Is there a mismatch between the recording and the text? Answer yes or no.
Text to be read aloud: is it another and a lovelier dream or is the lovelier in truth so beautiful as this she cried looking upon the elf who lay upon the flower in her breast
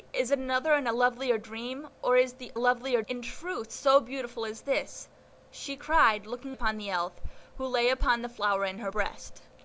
no